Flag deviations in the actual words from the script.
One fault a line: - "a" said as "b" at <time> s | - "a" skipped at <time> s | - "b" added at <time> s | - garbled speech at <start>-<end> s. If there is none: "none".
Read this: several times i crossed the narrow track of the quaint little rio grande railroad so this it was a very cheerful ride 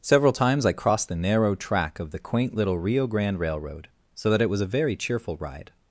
- "this" said as "that" at 4.3 s